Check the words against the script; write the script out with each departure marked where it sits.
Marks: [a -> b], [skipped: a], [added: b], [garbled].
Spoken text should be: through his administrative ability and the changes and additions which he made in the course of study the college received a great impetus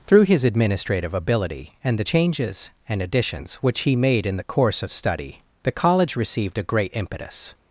through his administrative ability and the changes and additions which he made in the course of study the college received a great impetus